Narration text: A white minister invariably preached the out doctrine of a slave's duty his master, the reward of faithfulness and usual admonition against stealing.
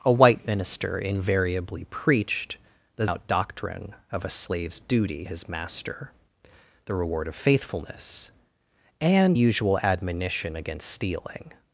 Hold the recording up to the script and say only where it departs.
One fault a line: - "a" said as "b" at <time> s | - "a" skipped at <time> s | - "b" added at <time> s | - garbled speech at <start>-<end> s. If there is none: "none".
none